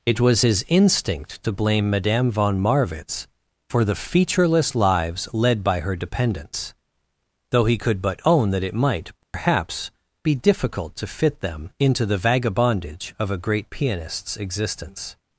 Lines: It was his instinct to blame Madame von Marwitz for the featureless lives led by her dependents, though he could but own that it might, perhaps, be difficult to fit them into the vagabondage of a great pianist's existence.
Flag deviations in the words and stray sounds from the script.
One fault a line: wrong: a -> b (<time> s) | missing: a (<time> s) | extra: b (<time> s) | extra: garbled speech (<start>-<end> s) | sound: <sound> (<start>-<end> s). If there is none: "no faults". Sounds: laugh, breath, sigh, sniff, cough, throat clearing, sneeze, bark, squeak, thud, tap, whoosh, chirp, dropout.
sound: dropout (9.2-9.3 s)